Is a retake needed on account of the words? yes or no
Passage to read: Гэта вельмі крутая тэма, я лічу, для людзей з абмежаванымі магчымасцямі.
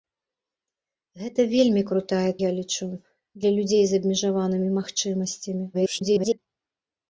yes